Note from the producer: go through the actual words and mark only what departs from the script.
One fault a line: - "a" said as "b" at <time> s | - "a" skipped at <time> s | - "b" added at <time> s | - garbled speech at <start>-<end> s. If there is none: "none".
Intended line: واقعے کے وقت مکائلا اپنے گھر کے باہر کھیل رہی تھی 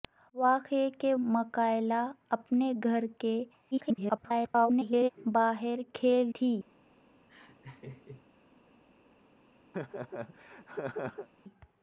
- "وقت" skipped at 1.1 s
- garbled speech at 3.7-5.1 s
- "رہی" skipped at 6.3 s